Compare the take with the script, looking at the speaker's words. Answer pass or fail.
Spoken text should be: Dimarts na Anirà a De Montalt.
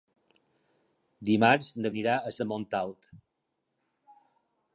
pass